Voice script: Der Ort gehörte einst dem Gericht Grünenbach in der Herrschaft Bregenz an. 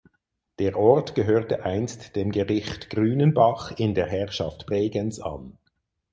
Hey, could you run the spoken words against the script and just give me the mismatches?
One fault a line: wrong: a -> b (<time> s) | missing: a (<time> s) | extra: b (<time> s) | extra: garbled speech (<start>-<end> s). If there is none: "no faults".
no faults